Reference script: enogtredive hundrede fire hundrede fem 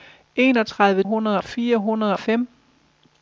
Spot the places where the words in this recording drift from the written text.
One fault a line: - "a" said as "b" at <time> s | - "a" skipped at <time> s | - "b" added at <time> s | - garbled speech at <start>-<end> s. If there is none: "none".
none